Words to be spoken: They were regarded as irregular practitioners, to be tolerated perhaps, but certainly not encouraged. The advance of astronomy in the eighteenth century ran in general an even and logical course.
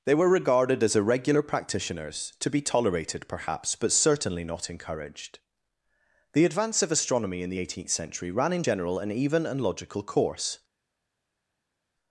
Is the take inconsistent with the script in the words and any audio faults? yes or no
no